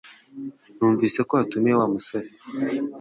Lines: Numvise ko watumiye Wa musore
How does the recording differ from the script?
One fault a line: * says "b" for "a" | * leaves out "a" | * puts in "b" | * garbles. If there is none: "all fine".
all fine